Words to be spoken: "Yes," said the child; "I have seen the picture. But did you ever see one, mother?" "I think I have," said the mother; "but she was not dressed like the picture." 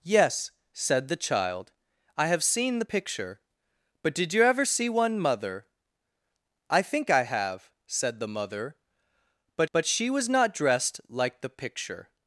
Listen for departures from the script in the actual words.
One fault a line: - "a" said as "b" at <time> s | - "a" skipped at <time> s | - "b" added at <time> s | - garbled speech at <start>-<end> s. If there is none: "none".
- "but" added at 9.7 s